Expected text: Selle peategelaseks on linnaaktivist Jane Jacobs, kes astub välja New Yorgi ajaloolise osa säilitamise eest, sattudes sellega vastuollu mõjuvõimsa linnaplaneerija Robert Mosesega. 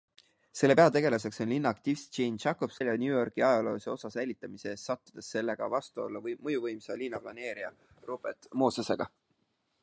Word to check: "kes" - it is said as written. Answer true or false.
false